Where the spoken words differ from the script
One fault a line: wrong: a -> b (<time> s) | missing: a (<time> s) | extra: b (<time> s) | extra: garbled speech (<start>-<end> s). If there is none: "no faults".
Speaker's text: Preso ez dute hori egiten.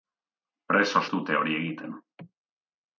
no faults